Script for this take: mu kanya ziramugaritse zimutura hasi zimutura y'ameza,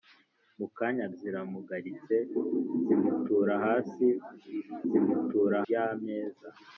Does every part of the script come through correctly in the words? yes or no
yes